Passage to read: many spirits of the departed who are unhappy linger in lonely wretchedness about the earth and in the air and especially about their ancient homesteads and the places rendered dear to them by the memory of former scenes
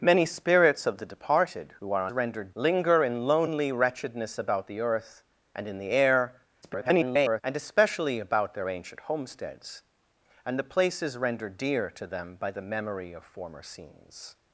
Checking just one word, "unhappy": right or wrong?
wrong